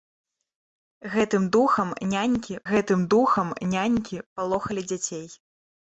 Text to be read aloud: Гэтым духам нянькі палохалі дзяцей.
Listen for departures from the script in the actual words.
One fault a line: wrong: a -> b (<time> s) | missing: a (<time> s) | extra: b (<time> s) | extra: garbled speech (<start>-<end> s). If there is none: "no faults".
extra: гэтым духам нянькі (2.7 s)